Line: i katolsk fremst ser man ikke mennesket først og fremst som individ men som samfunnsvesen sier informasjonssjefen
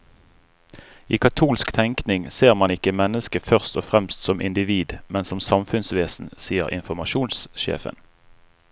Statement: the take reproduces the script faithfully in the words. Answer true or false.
false